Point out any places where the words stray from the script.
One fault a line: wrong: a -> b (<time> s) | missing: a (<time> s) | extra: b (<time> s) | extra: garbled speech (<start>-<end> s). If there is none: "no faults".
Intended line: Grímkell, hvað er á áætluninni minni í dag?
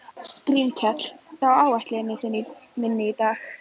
missing: hvað (1.0 s)